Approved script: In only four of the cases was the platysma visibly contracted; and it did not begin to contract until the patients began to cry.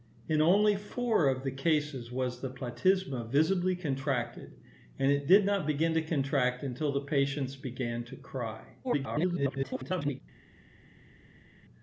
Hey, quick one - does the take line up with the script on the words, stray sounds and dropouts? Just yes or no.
no